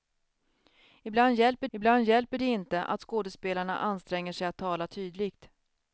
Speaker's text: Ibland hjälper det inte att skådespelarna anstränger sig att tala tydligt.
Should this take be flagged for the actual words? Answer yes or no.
yes